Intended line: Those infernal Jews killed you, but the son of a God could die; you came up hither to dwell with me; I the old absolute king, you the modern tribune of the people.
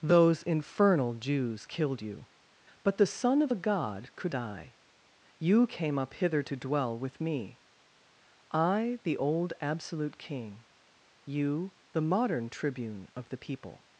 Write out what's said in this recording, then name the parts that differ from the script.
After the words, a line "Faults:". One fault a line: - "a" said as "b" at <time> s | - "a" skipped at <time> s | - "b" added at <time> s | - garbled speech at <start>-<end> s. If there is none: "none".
Those infernal Jews killed you, but the son of a God could die; you came up hither to dwell with me; I the old absolute king, you the modern tribune of the people.
Faults:
none